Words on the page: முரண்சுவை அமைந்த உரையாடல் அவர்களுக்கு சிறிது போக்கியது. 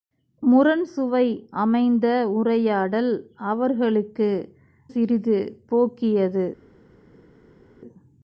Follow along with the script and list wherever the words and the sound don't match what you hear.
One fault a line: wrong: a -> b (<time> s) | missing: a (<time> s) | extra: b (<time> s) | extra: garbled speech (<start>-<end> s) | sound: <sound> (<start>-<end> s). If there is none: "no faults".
no faults